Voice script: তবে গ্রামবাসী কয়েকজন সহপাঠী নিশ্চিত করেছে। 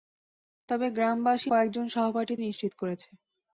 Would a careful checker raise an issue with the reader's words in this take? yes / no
no